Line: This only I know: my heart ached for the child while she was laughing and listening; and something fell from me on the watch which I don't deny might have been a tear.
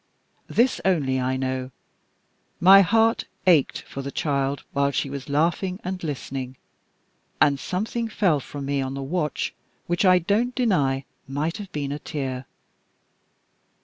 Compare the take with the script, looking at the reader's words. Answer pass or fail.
pass